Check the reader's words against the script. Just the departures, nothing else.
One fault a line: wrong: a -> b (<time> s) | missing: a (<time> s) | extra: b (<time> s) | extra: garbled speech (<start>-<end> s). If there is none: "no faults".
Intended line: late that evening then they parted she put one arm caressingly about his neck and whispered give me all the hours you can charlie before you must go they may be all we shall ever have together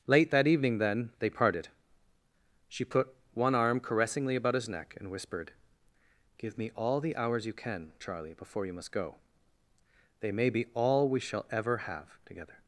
no faults